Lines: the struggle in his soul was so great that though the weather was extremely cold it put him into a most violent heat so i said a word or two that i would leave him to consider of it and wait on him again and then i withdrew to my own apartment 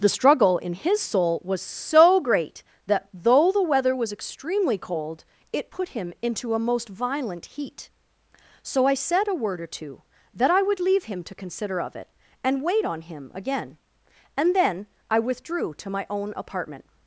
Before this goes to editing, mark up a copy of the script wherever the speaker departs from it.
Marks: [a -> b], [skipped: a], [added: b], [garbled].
the struggle in his soul was so great that though the weather was extremely cold it put him into a most violent heat so i said a word or two that i would leave him to consider of it and wait on him again and then i withdrew to my own apartment